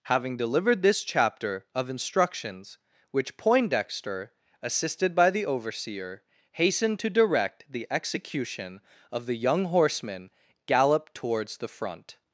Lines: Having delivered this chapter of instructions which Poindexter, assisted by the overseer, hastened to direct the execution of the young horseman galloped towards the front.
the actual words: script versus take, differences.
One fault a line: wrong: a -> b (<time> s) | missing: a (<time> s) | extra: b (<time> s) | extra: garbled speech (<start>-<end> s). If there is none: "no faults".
no faults